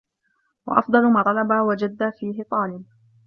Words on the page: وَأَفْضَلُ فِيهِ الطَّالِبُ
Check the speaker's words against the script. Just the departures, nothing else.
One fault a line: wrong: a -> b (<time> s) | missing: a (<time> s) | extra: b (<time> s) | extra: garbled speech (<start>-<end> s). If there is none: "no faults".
extra: مَا طَلَبَ وَجَدَّ (1.1 s)